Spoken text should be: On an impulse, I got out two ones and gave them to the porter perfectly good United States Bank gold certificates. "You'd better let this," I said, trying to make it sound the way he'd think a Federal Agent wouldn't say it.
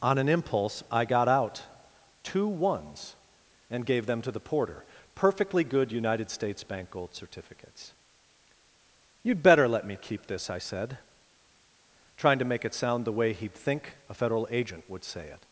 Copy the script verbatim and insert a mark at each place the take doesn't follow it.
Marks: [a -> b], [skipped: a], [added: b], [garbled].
On an impulse, I got out two ones and gave them to the porter perfectly good United States Bank gold certificates. "You'd better let [added: me keep] this," I said, trying to make it sound the way he'd think a Federal Agent [wouldn't -> would] say it.